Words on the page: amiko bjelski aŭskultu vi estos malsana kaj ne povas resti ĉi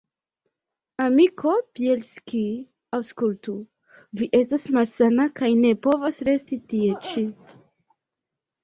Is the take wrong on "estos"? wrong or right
wrong